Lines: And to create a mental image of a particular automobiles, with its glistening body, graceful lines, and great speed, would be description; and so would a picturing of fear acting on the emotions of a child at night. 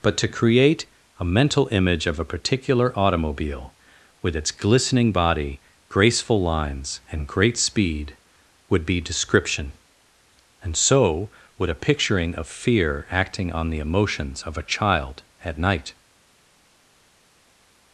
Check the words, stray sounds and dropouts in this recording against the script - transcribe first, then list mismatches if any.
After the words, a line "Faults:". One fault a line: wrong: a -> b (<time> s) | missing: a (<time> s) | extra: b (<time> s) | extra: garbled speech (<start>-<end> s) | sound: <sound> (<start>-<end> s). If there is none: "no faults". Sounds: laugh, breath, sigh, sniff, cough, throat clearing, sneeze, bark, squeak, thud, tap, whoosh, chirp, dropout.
But to create a mental image of a particular automobile, with its glistening body, graceful lines, and great speed, would be description; and so would a picturing of fear acting on the emotions of a child at night.
Faults:
wrong: And -> But (0.0 s)
wrong: automobiles -> automobile (2.9 s)